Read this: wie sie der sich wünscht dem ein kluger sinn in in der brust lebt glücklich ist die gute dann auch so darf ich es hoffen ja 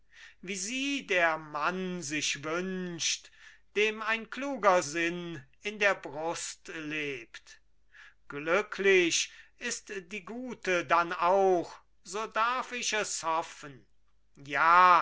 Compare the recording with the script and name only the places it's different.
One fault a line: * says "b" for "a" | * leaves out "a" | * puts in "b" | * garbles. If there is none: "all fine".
* puts in "mann"
* leaves out "in"